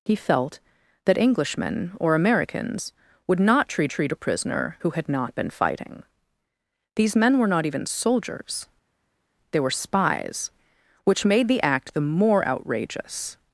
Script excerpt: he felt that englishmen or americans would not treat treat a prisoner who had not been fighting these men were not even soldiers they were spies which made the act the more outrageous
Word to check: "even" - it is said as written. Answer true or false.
true